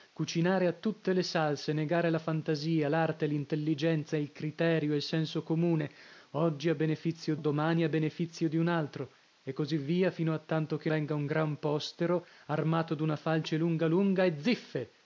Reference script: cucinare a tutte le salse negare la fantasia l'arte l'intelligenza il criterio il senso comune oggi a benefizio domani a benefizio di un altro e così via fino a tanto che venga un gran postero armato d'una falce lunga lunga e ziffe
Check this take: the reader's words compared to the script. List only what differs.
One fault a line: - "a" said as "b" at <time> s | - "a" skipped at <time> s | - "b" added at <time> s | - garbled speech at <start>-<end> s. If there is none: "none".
none